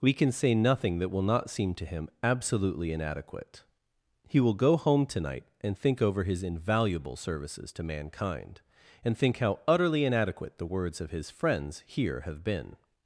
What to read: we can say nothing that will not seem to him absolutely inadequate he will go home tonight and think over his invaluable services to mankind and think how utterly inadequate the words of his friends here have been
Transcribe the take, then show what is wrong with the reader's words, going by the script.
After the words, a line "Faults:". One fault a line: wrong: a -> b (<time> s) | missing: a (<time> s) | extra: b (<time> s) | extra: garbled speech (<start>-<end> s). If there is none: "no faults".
we can say nothing that will not seem to him absolutely inadequate he will go home tonight and think over his invaluable services to mankind and think how utterly inadequate the words of his friends here have been
Faults:
no faults